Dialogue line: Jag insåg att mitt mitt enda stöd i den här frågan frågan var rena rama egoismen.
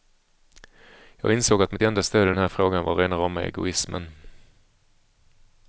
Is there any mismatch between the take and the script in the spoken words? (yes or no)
yes